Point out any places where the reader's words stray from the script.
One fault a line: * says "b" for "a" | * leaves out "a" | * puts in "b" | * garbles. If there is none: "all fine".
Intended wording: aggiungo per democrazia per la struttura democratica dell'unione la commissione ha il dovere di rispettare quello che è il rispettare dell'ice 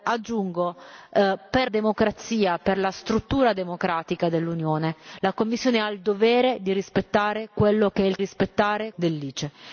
all fine